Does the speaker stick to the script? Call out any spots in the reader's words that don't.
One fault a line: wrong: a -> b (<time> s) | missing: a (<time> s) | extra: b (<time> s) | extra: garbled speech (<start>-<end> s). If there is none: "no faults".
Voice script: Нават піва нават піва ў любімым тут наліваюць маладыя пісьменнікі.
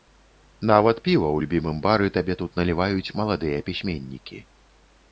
wrong: нават піва ў любімым -> ў любімым бары табе (1.4 s)